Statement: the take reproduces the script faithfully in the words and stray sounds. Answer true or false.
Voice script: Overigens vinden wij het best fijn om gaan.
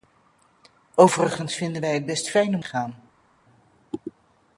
true